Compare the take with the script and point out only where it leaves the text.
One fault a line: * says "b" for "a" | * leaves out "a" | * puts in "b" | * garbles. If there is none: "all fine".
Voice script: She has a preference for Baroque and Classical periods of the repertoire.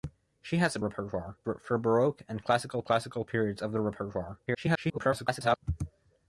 * says "repertoire" for "preference"
* puts in "Classical"
* garbles